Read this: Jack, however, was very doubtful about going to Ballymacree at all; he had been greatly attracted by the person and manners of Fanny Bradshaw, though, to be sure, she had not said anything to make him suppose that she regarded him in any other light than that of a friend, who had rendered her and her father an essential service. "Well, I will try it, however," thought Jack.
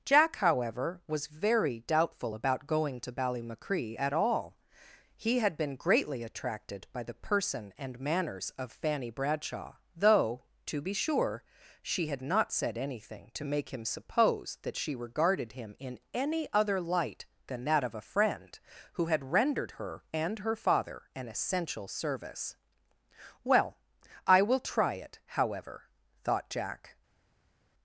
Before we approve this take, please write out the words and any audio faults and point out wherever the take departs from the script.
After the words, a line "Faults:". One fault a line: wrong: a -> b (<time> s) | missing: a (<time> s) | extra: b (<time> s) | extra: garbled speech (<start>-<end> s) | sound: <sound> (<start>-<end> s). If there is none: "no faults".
Jack, however, was very doubtful about going to Ballymacree at all; he had been greatly attracted by the person and manners of Fanny Bradshaw, though, to be sure, she had not said anything to make him suppose that she regarded him in any other light than that of a friend, who had rendered her and her father an essential service. "Well, I will try it, however," thought Jack.
Faults:
no faults